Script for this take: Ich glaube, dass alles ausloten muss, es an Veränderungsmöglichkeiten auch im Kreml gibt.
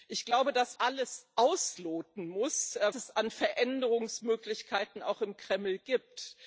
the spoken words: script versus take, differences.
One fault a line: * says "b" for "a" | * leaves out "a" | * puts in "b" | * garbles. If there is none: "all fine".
all fine